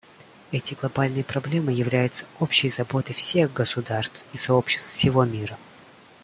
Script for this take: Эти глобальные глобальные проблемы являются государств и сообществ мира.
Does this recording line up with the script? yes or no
no